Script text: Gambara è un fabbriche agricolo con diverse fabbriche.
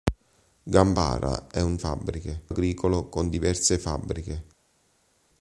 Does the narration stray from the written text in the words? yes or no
no